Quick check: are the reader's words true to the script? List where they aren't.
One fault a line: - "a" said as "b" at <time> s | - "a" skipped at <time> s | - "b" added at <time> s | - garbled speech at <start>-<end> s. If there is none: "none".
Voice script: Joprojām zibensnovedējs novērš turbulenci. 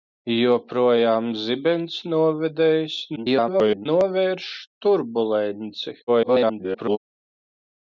- garbled speech at 3.2-3.9 s
- garbled speech at 6.1-7.0 s